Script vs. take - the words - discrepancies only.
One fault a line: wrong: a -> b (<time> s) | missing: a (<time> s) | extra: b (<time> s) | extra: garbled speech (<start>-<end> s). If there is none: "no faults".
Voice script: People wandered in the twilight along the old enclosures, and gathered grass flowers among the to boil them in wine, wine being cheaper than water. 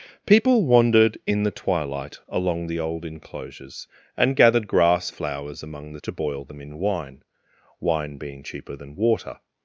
no faults